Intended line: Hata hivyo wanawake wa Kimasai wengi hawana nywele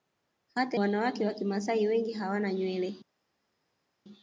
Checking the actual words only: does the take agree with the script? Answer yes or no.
no